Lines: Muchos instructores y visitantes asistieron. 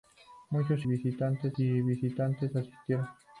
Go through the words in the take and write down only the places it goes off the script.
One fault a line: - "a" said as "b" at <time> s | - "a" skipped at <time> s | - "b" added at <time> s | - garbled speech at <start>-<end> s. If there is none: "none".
- "instructores" said as "visitantes" at 0.8 s